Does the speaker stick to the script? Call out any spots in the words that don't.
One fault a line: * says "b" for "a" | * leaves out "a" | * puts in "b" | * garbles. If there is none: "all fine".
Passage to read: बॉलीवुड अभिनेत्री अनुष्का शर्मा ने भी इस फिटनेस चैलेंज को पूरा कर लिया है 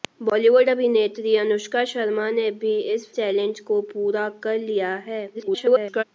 * leaves out "फिटनेस"
* garbles